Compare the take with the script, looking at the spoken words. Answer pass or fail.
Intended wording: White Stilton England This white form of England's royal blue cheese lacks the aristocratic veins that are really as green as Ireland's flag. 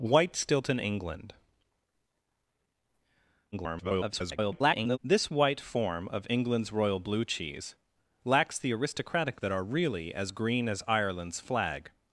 fail